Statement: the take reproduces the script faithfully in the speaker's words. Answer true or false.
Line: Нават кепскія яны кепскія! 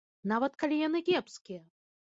false